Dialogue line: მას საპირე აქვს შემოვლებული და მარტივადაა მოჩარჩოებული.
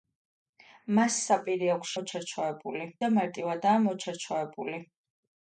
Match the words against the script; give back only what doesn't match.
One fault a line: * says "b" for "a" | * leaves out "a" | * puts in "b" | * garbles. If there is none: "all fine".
* says "მოჩარჩოებული" for "შემოვლებული"